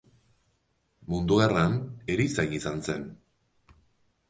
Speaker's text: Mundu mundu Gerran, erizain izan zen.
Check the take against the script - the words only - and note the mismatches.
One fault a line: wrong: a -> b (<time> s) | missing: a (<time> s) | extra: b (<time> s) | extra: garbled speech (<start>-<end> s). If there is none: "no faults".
missing: mundu (1.4 s)